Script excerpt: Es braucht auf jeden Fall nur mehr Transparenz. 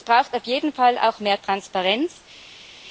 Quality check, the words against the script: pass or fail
fail